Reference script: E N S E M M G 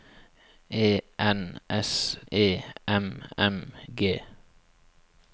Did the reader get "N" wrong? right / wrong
right